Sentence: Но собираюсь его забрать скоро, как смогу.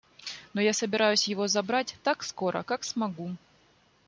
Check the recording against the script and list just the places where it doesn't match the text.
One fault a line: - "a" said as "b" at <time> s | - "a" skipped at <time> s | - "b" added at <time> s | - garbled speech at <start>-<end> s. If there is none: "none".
- "я" added at 0.6 s
- "так" added at 2.0 s